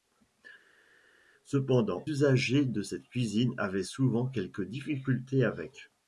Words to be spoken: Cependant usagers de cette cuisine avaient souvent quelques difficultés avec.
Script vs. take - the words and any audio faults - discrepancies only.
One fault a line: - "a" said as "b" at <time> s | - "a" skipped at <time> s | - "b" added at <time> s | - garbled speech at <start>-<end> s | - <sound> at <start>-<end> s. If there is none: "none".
none